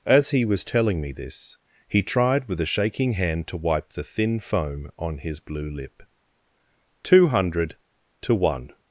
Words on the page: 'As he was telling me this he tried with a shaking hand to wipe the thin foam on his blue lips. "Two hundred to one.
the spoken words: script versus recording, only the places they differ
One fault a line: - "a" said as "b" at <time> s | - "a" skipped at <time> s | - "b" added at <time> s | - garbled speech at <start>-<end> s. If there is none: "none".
- "lips" said as "lip" at 5.7 s